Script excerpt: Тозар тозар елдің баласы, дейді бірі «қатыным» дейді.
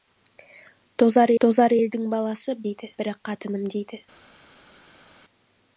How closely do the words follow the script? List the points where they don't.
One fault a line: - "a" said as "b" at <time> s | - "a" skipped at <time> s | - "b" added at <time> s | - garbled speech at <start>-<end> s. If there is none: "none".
none